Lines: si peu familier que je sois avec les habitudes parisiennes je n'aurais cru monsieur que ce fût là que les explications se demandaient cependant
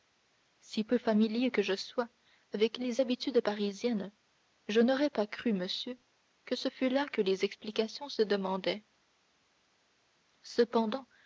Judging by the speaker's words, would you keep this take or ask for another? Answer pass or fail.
fail